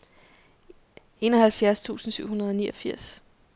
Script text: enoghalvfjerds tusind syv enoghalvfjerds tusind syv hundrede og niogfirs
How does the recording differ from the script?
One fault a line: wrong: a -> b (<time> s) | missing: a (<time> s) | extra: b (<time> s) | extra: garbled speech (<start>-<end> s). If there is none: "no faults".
missing: enoghalvfjerds tusind syv (2.3 s)